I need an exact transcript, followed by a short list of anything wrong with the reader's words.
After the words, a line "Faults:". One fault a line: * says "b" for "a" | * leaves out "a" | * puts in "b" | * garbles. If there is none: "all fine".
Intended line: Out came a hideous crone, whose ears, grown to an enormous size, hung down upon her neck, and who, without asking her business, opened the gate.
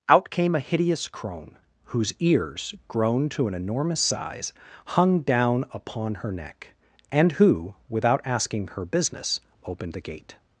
Out came a hideous crone, whose ears, grown to an enormous size, hung down upon her neck, and who, without asking her business, opened the gate.
Faults:
all fine